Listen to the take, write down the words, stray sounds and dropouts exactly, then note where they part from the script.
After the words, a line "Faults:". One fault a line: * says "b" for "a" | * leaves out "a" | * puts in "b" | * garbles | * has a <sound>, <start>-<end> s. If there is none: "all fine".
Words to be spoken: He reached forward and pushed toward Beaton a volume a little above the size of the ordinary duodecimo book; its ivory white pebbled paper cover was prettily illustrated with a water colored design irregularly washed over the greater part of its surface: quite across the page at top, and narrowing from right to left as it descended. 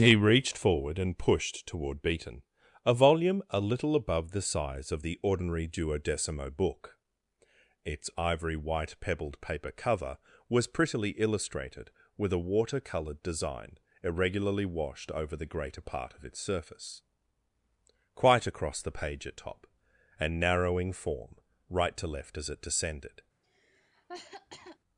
He reached forward and pushed toward Beaton a volume a little above the size of the ordinary duodecimo book; its ivory white pebbled paper cover was prettily illustrated with a water colored design irregularly washed over the greater part of its surface: quite across the page at top, and narrowing form right to left as it descended.
Faults:
* says "form" for "from"
* has a cough, 23.4-24.8 s